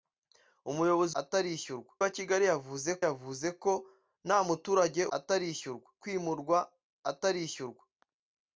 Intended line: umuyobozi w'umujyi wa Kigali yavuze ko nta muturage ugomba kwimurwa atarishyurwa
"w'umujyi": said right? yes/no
no